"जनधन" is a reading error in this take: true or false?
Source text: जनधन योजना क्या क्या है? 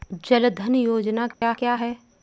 false